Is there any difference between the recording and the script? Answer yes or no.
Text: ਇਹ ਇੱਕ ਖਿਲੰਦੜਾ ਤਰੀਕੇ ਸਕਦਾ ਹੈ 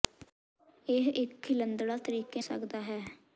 no